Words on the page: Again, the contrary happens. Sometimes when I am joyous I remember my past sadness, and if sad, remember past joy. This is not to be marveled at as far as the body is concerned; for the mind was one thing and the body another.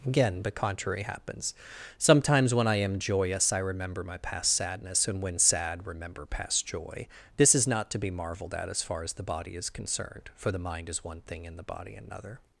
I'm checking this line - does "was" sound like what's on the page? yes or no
no